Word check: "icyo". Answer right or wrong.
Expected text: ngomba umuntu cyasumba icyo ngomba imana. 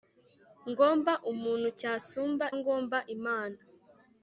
wrong